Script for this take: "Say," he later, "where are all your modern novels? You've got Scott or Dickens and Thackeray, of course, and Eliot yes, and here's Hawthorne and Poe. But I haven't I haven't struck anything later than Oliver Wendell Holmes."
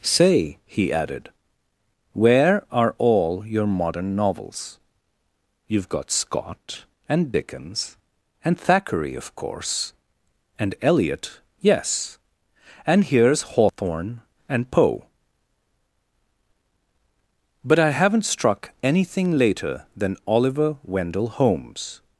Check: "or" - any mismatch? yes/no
yes